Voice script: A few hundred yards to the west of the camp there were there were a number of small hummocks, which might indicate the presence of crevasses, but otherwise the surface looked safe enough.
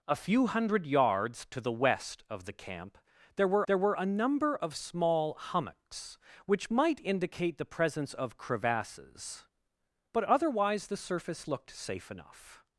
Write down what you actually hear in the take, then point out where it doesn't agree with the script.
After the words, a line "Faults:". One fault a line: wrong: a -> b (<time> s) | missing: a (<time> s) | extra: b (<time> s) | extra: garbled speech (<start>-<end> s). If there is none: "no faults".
A few hundred yards to the west of the camp there were there were a number of small hummocks, which might indicate the presence of crevasses, but otherwise the surface looked safe enough.
Faults:
no faults